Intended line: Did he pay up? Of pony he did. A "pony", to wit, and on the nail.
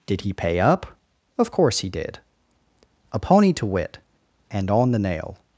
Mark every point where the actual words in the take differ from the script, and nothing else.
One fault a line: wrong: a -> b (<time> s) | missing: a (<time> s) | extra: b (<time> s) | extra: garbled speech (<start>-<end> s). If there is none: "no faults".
wrong: pony -> course (1.5 s)